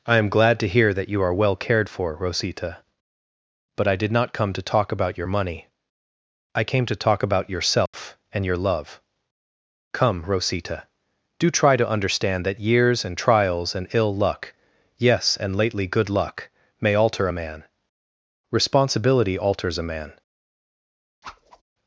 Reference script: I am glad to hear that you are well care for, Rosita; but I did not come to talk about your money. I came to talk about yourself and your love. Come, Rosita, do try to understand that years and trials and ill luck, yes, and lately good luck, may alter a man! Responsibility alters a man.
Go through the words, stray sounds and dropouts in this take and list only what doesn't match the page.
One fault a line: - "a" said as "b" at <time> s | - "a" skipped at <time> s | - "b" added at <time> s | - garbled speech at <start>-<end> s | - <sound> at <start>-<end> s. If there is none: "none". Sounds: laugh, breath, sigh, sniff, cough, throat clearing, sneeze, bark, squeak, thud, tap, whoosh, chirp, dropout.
- "care" said as "cared" at 1.6 s
- dropout at 7.9-7.9 s
- whoosh at 21.2-21.6 s